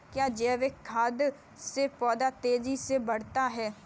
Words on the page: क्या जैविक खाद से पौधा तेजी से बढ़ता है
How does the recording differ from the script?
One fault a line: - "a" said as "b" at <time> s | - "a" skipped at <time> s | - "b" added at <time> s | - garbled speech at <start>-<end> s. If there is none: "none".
none